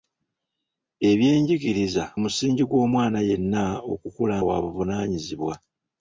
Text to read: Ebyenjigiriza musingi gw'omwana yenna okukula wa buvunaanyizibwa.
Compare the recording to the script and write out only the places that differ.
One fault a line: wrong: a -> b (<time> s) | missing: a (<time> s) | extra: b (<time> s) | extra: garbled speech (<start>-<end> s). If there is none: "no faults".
no faults